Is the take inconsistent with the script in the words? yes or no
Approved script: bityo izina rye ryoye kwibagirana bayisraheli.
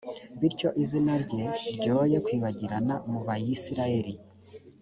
yes